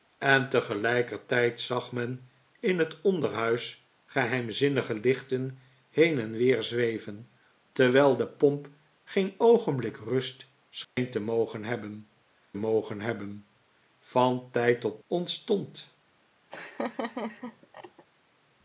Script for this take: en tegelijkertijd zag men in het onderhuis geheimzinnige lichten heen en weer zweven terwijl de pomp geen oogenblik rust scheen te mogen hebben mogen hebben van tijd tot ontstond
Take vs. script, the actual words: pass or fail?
pass